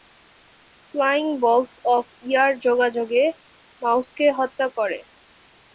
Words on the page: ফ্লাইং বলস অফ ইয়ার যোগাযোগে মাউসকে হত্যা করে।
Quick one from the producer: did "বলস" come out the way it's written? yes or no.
yes